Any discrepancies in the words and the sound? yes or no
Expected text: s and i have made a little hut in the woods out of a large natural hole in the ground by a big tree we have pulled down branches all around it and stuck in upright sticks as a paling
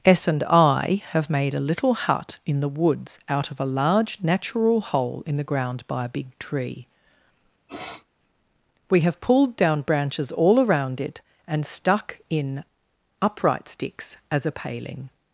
yes